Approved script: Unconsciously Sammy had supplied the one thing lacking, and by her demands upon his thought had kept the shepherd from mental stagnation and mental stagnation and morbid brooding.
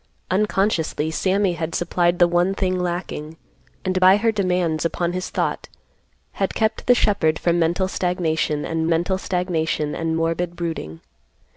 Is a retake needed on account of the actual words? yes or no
no